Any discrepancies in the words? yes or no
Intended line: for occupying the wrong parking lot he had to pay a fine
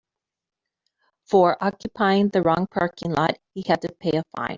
no